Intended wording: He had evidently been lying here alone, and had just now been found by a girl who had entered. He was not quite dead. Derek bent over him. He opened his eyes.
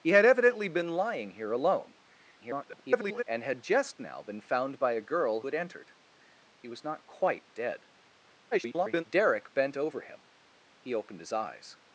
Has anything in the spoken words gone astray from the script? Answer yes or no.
yes